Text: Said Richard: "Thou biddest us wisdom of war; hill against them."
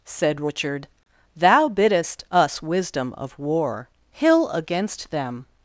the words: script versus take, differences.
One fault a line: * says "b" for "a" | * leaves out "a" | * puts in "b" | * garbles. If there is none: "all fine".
all fine